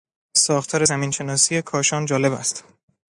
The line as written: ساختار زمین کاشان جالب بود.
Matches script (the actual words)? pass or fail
fail